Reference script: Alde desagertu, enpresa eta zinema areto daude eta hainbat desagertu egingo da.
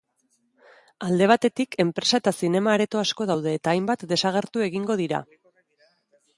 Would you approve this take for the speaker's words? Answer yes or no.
no